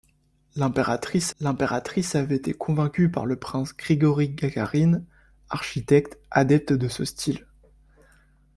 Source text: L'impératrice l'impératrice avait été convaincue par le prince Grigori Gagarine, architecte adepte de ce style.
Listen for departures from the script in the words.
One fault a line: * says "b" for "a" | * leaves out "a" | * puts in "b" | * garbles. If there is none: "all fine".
all fine